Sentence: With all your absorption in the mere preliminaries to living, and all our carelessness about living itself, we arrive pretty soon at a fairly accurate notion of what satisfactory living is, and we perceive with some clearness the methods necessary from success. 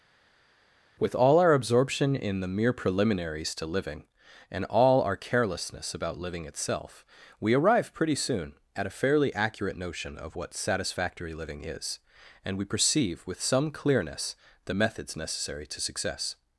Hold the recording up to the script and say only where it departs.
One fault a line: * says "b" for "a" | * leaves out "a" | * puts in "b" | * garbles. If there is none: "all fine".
* says "our" for "your"
* says "to" for "from"